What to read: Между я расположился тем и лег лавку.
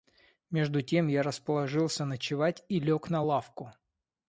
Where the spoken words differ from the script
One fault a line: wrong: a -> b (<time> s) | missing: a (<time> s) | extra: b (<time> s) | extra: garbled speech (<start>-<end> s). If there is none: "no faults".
extra: тем (0.8 s)
wrong: тем -> ночевать (2.0 s)
extra: на (3.1 s)